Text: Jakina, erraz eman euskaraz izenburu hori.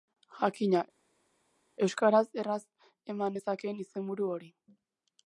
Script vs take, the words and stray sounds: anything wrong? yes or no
yes